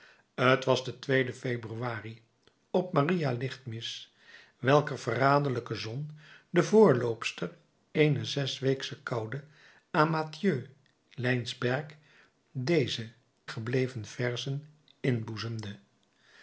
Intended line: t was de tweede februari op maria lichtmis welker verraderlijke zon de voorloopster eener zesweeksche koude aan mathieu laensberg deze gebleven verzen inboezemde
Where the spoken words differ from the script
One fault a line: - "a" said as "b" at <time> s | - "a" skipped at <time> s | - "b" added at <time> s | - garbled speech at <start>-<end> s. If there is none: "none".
none